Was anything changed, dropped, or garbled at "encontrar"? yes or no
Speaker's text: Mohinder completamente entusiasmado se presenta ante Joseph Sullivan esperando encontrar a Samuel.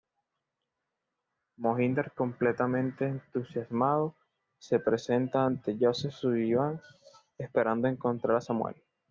no